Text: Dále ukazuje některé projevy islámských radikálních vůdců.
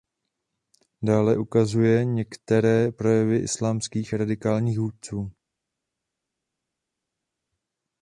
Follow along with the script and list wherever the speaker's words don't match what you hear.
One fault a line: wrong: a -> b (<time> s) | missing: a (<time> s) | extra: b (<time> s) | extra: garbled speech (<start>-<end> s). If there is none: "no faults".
no faults